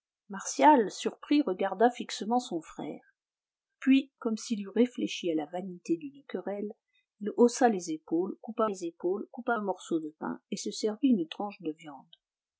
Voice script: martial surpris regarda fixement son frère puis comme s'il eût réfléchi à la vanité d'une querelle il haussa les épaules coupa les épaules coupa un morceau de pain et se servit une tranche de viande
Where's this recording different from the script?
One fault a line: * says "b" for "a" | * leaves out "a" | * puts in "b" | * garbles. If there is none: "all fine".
all fine